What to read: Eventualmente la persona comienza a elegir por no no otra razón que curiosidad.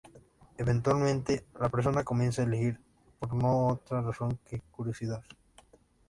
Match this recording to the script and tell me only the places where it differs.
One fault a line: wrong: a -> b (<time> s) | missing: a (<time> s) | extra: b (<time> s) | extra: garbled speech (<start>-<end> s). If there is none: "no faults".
missing: no (3.7 s)